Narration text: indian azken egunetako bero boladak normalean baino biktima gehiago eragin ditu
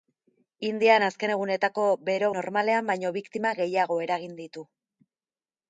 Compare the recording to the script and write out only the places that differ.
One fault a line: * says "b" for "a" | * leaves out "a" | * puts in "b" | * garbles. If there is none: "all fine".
* leaves out "boladak"